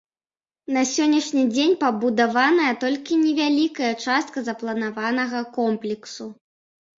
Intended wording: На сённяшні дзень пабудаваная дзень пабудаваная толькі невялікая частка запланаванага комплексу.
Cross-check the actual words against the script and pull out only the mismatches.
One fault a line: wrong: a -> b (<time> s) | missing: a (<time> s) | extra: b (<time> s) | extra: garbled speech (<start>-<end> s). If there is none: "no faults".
missing: дзень пабудаваная (2.7 s)